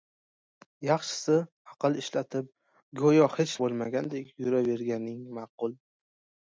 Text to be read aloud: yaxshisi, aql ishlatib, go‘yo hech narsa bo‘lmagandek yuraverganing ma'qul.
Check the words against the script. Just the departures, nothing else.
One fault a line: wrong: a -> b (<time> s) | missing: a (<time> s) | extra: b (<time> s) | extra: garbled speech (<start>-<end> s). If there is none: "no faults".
missing: narsa (3.6 s)